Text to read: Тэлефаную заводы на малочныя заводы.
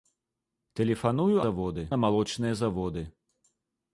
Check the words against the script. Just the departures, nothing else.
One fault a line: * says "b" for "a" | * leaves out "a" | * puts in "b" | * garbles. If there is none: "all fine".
all fine